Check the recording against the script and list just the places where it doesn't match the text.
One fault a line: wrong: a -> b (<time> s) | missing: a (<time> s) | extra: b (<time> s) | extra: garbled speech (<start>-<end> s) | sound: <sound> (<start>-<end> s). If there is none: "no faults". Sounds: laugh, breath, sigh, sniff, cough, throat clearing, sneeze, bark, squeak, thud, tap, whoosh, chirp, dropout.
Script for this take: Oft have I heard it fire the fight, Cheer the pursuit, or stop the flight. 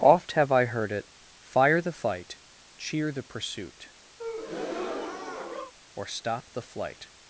sound: breath (4.2-5.7 s)